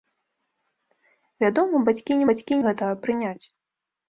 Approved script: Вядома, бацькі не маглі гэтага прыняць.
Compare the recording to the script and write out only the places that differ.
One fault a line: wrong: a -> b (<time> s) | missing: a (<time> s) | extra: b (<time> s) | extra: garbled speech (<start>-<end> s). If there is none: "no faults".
wrong: маглі -> бацькі (2.3 s)